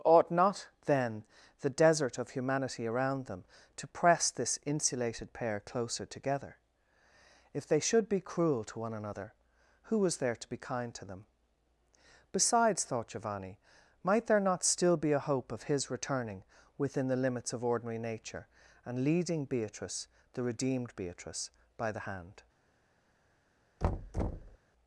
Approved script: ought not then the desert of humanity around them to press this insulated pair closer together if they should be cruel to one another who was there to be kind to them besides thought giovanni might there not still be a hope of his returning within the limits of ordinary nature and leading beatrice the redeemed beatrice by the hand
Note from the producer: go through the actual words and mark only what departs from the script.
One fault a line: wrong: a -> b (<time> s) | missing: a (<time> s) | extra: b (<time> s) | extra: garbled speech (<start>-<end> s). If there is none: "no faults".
no faults